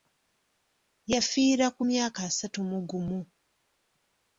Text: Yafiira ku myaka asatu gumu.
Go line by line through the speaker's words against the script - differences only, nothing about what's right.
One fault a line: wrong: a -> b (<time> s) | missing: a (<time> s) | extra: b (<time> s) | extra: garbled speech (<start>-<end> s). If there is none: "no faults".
extra: mu (2.7 s)